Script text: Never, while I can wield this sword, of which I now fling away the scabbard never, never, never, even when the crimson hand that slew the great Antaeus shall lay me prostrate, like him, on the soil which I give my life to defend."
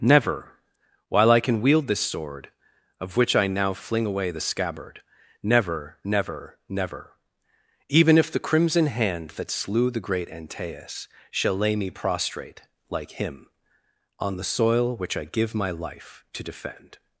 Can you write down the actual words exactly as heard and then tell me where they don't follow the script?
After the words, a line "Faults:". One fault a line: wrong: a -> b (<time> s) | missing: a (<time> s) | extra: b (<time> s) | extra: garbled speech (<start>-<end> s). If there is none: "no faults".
Never, while I can wield this sword, of which I now fling away the scabbard never, never, never, even if the crimson hand that slew the great Antaeus shall lay me prostrate, like him, on the soil which I give my life to defend."
Faults:
wrong: when -> if (8.2 s)